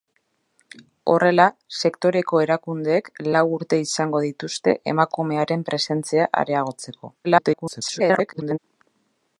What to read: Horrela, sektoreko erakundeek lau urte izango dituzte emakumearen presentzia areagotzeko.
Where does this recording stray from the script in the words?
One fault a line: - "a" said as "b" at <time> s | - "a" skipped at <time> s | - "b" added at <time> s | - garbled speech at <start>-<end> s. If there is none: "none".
- garbled speech at 7.2-8.6 s